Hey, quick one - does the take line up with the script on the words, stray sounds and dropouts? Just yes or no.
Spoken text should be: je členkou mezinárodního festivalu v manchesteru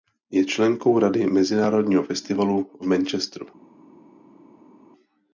no